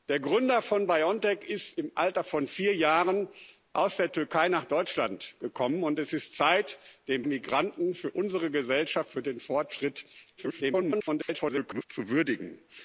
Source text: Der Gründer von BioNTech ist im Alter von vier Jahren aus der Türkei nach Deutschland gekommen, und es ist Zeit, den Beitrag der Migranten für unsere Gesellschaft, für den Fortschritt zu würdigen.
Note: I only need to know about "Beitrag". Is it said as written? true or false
false